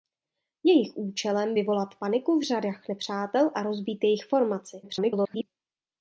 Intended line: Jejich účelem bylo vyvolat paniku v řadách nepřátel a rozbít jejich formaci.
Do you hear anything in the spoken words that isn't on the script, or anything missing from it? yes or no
yes